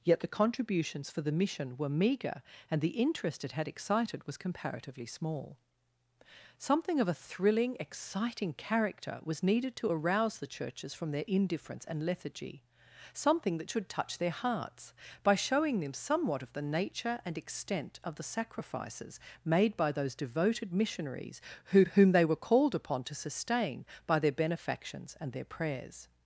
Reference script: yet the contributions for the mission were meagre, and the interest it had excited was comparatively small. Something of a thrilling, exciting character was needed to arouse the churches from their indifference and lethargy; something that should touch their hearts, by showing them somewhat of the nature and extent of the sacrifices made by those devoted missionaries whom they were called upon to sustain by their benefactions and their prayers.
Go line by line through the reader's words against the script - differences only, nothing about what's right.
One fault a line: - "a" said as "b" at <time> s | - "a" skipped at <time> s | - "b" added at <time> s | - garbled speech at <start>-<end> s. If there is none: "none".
- "who" added at 21.6 s